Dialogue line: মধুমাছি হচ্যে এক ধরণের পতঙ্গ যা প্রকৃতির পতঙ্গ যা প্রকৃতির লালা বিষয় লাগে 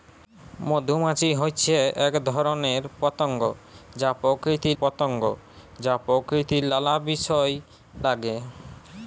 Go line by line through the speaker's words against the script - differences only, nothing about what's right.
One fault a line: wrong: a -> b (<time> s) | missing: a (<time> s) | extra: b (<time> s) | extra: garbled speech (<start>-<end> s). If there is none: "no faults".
no faults